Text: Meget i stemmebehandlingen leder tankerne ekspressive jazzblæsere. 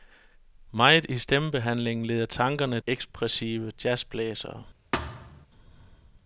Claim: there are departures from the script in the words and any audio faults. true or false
true